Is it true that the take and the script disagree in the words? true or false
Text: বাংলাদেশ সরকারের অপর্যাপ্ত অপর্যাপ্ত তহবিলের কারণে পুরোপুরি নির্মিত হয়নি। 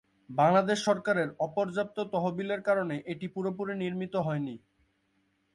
true